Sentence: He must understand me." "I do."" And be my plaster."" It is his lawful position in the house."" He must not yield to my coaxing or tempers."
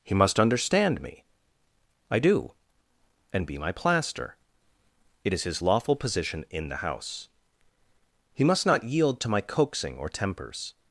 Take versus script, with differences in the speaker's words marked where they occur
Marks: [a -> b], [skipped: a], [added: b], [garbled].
He must understand me." "I do."" And be my plaster."" It is his lawful position in the house."" He must not yield to my coaxing or tempers."